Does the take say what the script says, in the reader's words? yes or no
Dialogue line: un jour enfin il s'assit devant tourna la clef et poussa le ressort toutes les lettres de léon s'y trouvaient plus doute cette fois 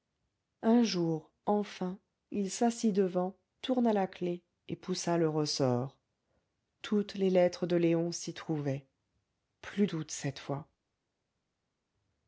yes